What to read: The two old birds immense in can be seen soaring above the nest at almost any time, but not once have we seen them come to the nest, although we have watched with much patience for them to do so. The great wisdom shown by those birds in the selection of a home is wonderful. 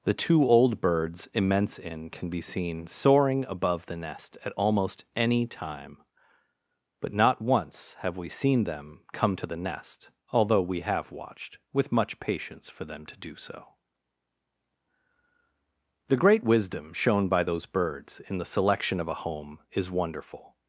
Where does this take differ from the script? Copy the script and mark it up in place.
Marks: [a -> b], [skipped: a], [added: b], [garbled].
The two old birds immense in can be seen soaring above the nest at almost any time, but not once have we seen them come to the nest, although we have watched with much patience for them to do so. The great wisdom shown by those birds in the selection of a home is wonderful.